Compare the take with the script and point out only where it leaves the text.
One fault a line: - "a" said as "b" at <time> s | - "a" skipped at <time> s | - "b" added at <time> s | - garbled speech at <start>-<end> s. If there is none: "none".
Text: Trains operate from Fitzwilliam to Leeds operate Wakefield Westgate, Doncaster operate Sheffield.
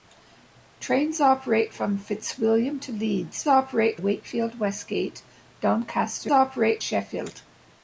none